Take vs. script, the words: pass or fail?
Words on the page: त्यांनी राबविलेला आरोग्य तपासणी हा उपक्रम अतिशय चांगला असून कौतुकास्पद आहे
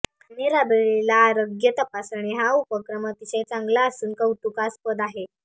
pass